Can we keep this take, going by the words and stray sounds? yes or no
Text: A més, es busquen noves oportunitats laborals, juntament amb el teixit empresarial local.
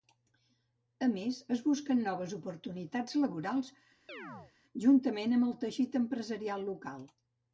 no